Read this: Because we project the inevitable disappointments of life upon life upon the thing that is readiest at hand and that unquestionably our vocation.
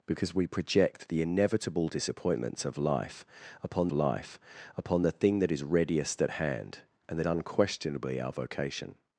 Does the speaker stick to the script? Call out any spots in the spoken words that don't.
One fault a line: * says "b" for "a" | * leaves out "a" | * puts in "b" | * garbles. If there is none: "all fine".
all fine